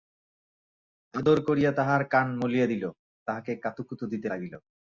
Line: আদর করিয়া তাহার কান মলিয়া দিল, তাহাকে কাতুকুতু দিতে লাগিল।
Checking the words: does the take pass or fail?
pass